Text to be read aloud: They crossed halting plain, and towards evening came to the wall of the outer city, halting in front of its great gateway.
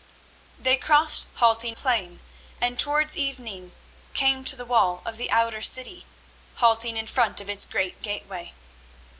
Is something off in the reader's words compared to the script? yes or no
no